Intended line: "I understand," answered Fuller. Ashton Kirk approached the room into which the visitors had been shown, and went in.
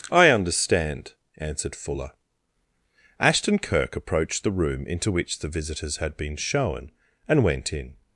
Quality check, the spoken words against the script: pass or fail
pass